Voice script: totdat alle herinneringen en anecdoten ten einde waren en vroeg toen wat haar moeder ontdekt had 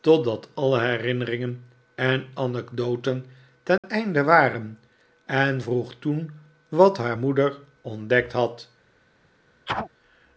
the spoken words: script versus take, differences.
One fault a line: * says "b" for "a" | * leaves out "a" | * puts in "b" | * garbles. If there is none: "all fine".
all fine